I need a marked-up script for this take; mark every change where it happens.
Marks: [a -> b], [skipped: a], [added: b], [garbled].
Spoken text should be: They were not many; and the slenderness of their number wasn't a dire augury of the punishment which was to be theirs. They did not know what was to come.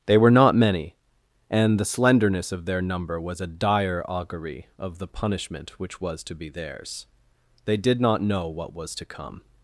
They were not many; and the slenderness of their number [wasn't -> was] a dire augury of the punishment which was to be theirs. They did not know what was to come.